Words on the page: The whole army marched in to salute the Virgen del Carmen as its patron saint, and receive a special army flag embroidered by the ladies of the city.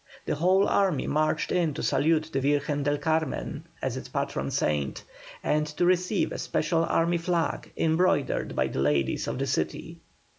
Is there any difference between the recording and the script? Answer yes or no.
yes